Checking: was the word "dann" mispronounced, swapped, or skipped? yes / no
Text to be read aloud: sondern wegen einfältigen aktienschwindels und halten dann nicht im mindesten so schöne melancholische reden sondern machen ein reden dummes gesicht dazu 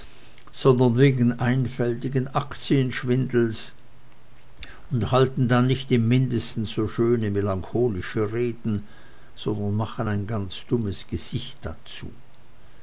no